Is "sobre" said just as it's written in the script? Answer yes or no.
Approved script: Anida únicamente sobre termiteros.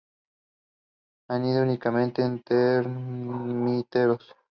no